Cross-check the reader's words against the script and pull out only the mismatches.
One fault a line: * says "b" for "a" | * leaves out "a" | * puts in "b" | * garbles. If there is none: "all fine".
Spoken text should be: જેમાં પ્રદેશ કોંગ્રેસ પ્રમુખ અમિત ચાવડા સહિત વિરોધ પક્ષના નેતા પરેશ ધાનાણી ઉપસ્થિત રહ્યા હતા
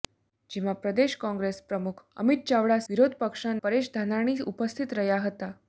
* leaves out "સહિત"
* leaves out "નેતા"